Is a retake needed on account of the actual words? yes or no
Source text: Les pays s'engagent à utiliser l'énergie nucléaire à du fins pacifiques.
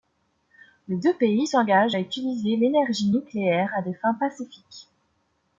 yes